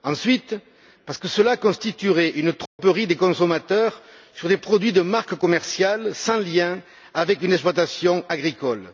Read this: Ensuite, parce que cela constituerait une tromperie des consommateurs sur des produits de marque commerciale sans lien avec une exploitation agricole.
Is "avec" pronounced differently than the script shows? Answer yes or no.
no